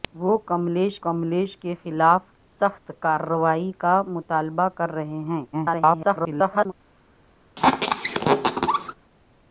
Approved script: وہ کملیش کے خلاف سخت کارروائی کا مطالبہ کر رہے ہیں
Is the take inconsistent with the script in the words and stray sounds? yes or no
yes